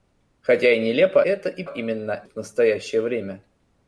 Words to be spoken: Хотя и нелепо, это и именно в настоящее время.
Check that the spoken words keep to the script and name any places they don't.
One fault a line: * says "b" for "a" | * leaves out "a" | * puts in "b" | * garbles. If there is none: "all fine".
all fine